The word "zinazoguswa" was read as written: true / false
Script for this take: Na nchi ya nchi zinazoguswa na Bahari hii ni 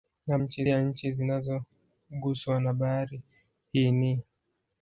true